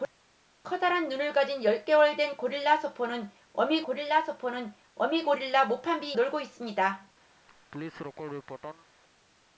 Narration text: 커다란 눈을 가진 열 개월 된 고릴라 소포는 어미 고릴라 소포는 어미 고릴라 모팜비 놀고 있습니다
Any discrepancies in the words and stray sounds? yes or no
yes